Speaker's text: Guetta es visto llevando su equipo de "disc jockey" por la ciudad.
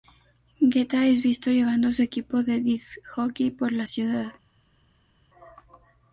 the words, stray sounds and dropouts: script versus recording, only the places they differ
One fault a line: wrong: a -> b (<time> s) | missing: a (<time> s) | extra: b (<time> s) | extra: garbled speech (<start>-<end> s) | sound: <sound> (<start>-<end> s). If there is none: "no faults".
no faults